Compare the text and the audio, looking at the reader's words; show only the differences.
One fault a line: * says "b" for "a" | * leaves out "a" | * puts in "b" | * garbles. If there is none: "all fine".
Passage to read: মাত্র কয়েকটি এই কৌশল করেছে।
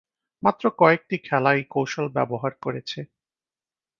* puts in "খেলা"
* puts in "ব্যবহার"